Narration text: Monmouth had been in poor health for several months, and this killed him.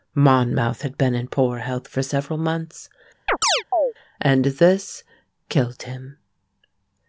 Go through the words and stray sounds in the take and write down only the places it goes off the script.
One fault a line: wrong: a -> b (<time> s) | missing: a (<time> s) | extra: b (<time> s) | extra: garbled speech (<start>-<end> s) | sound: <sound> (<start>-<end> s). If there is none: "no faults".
sound: chirp (3.3-3.9 s)